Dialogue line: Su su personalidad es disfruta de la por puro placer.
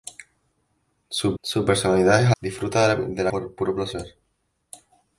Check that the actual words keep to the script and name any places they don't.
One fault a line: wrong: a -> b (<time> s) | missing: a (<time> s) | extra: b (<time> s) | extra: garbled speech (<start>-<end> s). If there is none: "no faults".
no faults